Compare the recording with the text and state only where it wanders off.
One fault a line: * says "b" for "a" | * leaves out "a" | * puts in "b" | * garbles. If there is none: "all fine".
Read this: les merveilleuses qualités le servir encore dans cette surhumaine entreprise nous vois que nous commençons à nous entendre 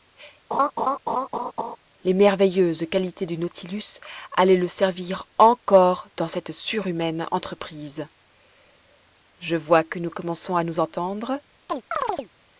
* puts in "du nautilus allaient"
* says "je" for "nous"